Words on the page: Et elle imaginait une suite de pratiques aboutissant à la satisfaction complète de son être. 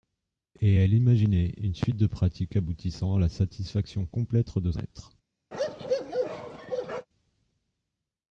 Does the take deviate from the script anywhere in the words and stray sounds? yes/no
yes